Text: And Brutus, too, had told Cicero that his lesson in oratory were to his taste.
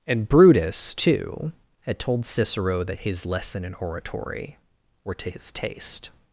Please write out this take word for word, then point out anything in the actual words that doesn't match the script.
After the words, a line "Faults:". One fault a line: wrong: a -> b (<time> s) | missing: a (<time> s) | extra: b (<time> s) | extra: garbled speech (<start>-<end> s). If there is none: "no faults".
And Brutus, too, had told Cicero that his lesson in oratory were to his taste.
Faults:
no faults